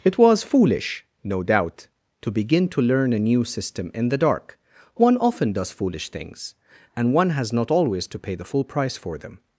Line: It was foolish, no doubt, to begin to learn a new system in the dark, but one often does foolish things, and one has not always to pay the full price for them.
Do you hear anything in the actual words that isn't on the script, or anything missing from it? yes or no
yes